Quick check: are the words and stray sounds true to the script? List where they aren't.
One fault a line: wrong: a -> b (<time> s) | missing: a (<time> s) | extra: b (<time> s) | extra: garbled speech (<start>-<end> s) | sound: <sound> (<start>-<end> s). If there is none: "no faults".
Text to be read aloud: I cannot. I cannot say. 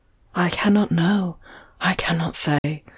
extra: know (0.9 s)
sound: dropout (2.6-2.6 s)